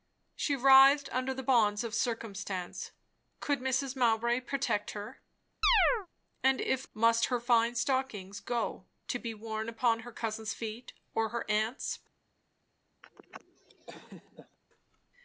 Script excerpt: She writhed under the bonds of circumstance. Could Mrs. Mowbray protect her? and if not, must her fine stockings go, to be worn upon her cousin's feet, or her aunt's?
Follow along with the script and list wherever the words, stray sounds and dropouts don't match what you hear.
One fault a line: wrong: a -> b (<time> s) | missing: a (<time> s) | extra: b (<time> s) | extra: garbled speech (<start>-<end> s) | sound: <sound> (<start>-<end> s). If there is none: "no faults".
sound: chirp (5.6-6.1 s)
missing: not (6.9 s)
sound: laugh (13.0-14.6 s)